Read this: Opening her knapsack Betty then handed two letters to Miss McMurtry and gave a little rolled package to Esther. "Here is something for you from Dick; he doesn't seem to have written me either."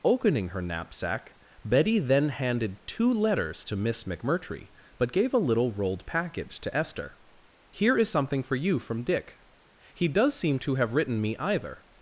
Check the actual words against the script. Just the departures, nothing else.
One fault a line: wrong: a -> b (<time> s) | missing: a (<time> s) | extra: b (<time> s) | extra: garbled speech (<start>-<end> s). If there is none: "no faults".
wrong: and -> but (5.0 s)
wrong: doesn't -> does (10.1 s)